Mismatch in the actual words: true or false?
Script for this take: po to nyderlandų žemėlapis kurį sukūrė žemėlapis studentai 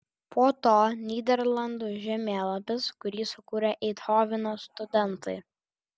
true